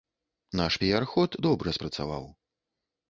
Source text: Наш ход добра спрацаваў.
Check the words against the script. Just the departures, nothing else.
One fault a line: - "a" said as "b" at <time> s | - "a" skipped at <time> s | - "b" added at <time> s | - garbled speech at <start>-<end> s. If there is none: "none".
- "піяр" added at 0.8 s